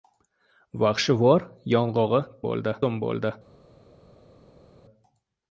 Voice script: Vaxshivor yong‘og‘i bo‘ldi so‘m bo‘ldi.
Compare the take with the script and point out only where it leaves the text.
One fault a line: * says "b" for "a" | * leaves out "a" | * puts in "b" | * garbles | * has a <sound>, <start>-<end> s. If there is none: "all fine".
all fine